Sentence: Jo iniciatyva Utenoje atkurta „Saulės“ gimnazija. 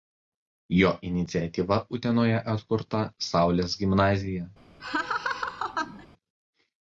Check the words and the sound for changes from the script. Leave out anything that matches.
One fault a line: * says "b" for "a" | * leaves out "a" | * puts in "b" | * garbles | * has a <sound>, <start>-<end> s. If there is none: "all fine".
* has a laugh, 4.8-6.1 s